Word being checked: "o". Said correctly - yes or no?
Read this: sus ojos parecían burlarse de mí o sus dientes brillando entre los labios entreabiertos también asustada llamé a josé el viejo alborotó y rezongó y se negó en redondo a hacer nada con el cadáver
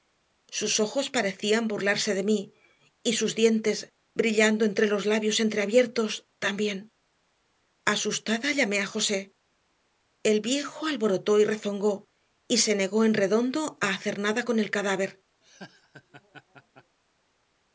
no